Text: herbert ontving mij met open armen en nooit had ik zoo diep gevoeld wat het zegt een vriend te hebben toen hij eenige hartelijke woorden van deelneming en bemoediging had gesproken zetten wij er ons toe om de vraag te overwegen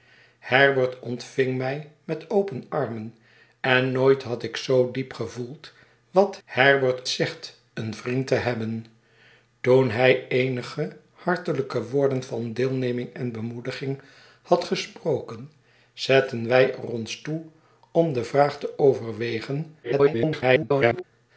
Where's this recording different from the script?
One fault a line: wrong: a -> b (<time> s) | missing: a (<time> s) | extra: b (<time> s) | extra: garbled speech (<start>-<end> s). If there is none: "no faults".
wrong: het -> herbert (6.4 s)
extra: garbled speech (19.8-21.0 s)